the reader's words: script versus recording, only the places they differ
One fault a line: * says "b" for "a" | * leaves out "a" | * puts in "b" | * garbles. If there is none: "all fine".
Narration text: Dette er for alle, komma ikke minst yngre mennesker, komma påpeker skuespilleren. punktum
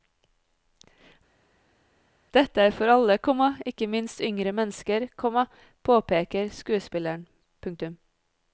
all fine